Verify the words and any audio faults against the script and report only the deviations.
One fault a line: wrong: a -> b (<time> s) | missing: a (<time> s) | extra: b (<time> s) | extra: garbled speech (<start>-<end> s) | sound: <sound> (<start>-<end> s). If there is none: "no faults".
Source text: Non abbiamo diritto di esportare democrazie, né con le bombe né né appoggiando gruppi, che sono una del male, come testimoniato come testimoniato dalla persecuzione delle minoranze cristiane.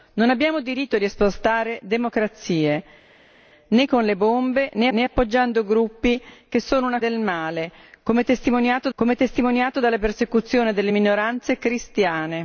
no faults